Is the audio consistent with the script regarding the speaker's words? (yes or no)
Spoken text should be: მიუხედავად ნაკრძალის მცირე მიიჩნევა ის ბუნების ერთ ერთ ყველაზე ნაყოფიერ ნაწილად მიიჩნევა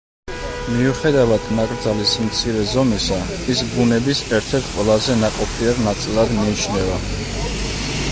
no